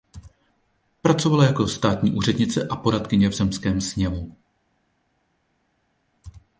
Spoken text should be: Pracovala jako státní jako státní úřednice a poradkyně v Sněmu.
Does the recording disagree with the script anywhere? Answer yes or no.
yes